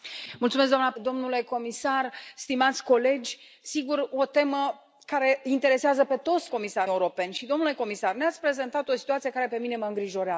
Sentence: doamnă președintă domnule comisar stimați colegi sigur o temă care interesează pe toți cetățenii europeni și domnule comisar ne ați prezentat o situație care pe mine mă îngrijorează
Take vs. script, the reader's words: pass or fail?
fail